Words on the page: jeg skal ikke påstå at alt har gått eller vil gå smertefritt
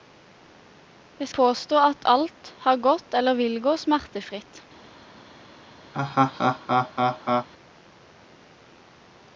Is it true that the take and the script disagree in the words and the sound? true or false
true